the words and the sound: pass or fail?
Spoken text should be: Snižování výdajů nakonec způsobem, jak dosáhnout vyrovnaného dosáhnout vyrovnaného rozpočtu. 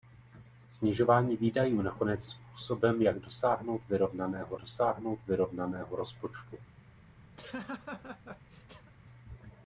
fail